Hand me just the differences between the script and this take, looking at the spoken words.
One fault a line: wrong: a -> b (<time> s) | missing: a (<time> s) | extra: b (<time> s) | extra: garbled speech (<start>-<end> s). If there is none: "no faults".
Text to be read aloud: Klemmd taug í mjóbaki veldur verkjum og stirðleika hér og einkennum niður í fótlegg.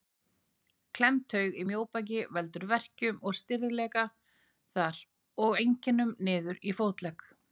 wrong: hér -> þar (4.8 s)